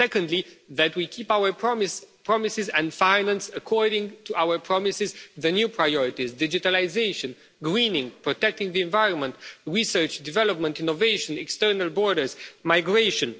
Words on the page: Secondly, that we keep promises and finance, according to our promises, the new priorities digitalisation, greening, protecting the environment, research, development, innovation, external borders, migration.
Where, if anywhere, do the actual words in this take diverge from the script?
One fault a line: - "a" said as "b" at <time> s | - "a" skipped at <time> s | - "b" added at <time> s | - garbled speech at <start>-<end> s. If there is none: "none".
- "our" added at 1.3 s